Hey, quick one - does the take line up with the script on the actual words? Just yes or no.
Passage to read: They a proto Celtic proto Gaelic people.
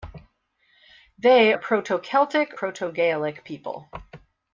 yes